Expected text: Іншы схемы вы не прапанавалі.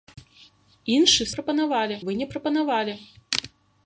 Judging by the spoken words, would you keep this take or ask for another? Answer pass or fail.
fail